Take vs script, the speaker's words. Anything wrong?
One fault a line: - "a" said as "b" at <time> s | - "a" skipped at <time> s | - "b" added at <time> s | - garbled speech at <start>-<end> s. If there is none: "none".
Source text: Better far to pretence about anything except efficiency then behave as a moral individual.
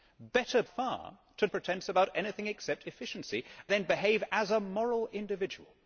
none